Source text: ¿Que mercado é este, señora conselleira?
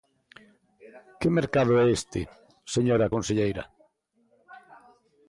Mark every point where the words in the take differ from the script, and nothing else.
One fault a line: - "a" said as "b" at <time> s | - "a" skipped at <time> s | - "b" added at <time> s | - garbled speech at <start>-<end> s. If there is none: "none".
none